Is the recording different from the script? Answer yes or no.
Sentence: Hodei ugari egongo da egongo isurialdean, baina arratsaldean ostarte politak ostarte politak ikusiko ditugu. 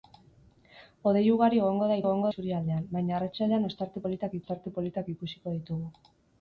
no